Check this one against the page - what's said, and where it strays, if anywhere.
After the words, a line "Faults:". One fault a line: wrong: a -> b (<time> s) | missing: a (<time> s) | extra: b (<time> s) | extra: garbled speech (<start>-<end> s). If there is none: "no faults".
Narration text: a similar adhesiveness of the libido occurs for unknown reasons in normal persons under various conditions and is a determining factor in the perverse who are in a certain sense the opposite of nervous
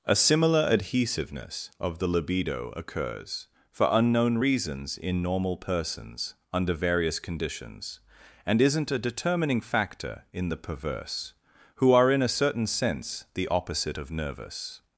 a similar adhesiveness of the libido occurs for unknown reasons in normal persons under various conditions and isn't a determining factor in the perverse who are in a certain sense the opposite of nervous
Faults:
wrong: is -> isn't (8.6 s)